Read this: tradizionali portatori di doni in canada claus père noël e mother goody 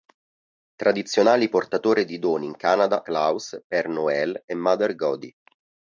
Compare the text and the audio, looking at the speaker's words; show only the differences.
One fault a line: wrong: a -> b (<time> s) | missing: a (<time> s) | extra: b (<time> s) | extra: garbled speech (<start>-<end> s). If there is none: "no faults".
no faults